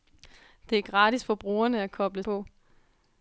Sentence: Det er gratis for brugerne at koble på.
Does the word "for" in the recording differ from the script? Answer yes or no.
no